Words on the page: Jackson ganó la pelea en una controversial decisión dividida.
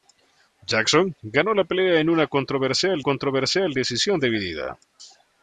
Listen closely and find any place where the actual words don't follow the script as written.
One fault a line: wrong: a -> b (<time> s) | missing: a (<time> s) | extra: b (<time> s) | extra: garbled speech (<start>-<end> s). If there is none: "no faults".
extra: controversial (3.0 s)